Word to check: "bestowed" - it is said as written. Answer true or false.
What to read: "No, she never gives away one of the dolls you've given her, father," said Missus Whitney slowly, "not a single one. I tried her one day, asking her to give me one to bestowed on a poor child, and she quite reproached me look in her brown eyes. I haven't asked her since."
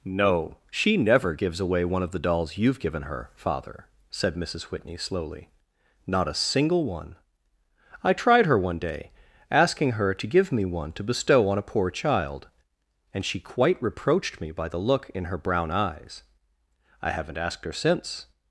false